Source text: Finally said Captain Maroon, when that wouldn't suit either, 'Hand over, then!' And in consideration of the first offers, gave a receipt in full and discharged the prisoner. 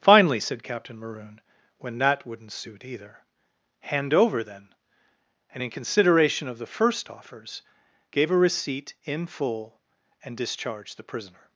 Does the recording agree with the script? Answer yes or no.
yes